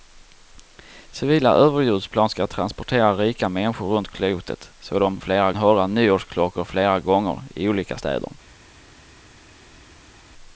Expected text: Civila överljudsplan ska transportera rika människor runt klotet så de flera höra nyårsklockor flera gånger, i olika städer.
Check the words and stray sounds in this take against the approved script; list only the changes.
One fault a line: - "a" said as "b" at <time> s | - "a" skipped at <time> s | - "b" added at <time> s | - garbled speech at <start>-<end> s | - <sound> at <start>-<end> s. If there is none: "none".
none